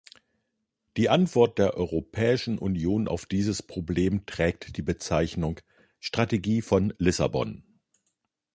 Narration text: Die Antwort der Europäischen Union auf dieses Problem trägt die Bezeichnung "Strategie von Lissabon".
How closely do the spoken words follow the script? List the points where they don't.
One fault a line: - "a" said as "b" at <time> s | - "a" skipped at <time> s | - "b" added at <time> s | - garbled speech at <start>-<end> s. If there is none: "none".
none